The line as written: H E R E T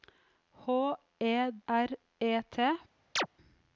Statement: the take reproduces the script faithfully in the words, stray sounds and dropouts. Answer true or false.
false